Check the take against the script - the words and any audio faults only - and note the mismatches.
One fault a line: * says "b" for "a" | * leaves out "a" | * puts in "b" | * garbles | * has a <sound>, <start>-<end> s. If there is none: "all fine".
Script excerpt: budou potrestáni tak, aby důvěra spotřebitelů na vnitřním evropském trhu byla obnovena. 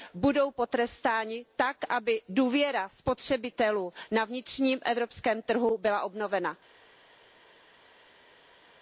all fine